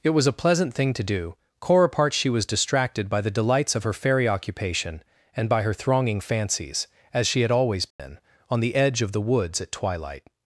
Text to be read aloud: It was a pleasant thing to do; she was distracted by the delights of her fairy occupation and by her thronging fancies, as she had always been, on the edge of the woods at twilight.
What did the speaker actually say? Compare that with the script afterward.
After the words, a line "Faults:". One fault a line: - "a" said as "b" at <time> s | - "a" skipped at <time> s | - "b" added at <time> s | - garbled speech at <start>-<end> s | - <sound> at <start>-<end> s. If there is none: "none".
It was a pleasant thing to do; core apart she was distracted by the delights of her fairy occupation and by her thronging fancies, as she had always been, on the edge of the woods at twilight.
Faults:
- "core apart" added at 1.6 s
- dropout at 7.9-8.0 s